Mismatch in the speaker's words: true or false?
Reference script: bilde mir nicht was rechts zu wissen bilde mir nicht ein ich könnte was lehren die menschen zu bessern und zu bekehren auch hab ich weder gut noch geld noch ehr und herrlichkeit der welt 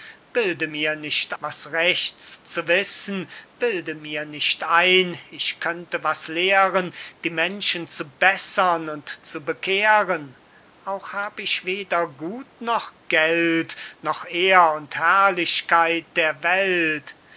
false